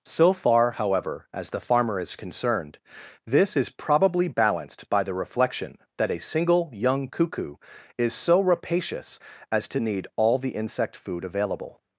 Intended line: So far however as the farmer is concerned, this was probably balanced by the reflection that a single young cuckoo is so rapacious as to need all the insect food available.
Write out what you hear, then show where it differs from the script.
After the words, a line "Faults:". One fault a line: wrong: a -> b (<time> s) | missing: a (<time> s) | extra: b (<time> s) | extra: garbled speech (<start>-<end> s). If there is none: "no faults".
So far however as the farmer is concerned, this is probably balanced by the reflection that a single young cuckoo is so rapacious as to need all the insect food available.
Faults:
wrong: was -> is (3.5 s)